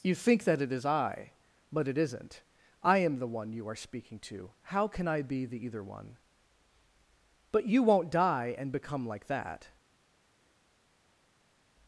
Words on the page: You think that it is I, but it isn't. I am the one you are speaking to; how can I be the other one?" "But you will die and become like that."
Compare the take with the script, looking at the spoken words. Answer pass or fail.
fail